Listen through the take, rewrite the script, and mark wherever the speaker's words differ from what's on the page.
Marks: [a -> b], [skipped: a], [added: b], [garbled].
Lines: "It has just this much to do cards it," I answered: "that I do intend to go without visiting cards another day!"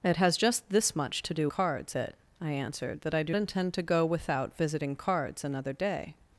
"It has just this much to do cards it," I answered: "that I do intend to go without visiting cards another day!"